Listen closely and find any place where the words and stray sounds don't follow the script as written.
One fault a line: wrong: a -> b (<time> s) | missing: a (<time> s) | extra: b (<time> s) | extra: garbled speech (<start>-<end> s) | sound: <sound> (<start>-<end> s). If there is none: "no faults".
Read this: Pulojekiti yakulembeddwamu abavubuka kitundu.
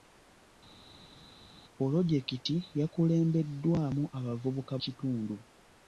no faults